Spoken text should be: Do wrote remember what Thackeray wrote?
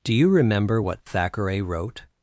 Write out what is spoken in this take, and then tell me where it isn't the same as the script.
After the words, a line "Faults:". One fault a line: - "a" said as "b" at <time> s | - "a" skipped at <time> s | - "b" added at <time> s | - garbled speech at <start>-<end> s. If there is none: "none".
Do you remember what Thackeray wrote?
Faults:
- "wrote" said as "you" at 0.1 s